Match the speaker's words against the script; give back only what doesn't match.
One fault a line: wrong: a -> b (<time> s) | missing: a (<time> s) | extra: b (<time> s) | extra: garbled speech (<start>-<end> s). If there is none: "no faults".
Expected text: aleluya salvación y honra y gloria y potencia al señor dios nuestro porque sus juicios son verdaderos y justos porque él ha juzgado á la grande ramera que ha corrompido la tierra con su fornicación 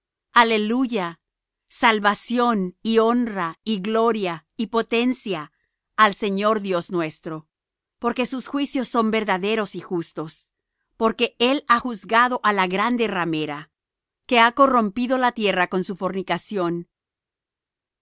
no faults